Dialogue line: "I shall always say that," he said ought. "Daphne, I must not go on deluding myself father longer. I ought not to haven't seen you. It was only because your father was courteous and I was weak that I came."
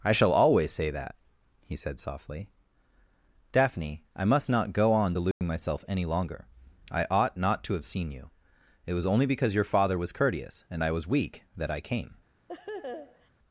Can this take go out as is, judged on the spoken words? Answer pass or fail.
fail